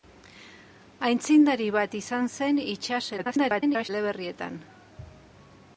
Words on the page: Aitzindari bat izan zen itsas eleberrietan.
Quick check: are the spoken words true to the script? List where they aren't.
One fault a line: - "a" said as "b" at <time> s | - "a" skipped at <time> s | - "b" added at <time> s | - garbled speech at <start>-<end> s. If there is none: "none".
- garbled speech at 3.2-3.9 s